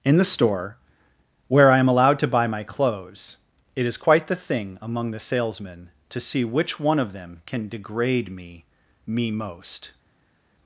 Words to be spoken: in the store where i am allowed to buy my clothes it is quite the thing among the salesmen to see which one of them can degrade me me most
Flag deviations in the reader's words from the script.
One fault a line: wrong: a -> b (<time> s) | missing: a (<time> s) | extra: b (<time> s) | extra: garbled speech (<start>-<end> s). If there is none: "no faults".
no faults